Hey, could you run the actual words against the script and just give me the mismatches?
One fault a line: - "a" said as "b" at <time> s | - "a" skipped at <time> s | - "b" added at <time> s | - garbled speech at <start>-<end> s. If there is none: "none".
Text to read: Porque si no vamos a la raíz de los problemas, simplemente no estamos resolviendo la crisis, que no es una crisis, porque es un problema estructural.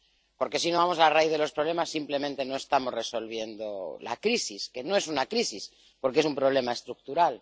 none